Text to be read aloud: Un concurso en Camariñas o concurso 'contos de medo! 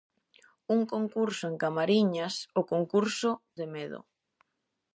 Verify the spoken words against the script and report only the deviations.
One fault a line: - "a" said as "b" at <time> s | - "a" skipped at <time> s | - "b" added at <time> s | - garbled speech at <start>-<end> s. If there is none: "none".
- "contos" skipped at 3.3 s